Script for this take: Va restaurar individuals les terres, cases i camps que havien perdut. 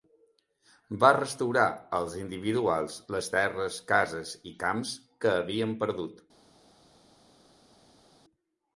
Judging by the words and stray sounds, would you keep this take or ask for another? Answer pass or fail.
fail